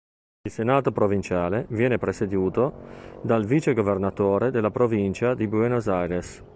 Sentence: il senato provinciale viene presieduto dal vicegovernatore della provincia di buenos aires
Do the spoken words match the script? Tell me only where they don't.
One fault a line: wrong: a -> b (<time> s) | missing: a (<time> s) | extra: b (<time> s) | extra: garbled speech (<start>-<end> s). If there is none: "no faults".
no faults